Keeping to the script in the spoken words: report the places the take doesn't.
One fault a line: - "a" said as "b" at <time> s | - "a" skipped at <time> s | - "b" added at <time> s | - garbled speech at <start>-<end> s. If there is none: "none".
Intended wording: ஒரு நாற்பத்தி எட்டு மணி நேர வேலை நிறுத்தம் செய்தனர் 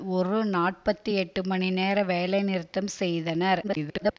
- garbled speech at 3.6-4.2 s